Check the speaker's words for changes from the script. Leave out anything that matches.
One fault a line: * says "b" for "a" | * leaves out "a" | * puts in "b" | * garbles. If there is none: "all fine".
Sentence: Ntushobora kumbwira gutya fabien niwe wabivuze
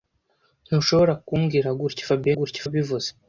* says "gutya" for "niwe"